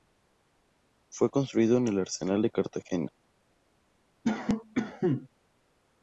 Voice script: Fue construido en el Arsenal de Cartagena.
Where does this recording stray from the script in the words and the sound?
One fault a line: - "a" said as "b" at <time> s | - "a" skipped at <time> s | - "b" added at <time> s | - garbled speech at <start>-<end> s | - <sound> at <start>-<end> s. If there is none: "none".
- cough at 4.2-5.3 s